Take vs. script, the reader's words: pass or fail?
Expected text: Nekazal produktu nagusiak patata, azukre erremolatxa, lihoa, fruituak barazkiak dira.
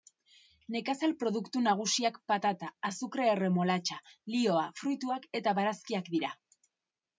fail